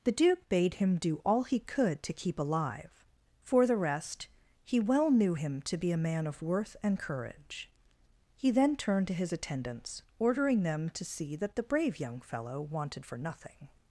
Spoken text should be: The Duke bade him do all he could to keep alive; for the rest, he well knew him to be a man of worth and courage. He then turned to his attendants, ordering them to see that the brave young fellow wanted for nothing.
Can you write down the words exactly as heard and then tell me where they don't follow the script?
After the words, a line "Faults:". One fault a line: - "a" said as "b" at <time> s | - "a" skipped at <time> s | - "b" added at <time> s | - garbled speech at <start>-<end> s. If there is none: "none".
The Duke bade him do all he could to keep alive; for the rest, he well knew him to be a man of worth and courage. He then turned to his attendants, ordering them to see that the brave young fellow wanted for nothing.
Faults:
none